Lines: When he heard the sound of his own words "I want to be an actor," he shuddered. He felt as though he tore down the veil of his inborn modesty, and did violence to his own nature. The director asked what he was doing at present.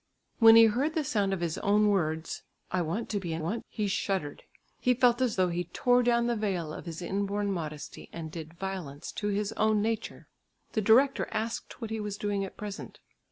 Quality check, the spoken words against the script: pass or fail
fail